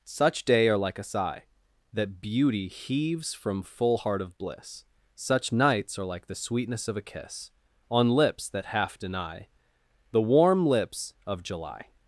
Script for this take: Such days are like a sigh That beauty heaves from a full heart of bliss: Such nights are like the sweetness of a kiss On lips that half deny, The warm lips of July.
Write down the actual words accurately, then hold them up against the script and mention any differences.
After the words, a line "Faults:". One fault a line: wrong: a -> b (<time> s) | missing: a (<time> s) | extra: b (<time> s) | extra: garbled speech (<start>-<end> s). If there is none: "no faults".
Such day are like a sigh That beauty heaves from full heart of bliss: Such nights are like the sweetness of a kiss On lips that half deny, The warm lips of July.
Faults:
wrong: days -> day (0.5 s)
missing: a (3.6 s)